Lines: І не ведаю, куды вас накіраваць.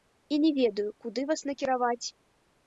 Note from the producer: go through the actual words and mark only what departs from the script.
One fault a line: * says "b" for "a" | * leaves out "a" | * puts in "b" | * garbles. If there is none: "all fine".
all fine